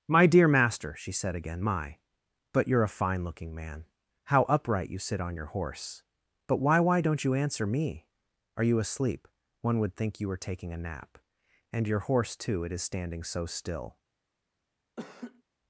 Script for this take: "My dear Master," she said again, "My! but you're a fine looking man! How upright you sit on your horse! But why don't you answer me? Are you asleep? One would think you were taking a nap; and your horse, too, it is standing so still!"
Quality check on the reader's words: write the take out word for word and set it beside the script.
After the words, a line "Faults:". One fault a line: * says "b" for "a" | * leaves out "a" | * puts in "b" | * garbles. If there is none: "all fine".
"My dear Master," she said again, "My! but you're a fine looking man! How upright you sit on your horse! But why why don't you answer me? Are you asleep? One would think you were taking a nap; and your horse, too, it is standing so still!"
Faults:
* puts in "why"